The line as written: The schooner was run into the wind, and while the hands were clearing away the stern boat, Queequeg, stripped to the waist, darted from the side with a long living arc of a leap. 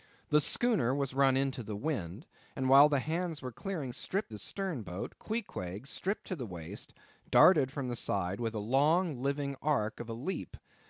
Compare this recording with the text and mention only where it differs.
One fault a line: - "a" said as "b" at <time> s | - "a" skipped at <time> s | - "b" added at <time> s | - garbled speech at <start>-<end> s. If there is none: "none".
- "away" said as "stripped" at 3.9 s